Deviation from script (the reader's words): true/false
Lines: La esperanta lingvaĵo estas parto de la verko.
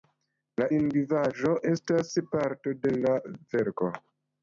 true